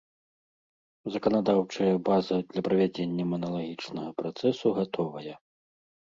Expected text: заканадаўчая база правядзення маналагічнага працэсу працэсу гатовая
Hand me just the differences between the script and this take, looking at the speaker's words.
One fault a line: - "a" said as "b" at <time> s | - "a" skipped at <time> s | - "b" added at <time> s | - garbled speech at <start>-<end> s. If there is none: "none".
- "для" added at 2.5 s
- "працэсу" skipped at 4.7 s